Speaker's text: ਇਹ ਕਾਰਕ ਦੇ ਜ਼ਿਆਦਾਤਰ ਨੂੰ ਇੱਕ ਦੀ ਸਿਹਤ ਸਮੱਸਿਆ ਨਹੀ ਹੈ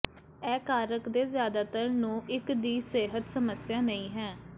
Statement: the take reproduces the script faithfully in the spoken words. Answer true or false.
true